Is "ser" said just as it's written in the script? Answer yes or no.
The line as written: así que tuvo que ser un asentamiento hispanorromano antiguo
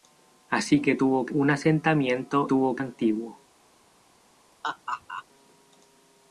no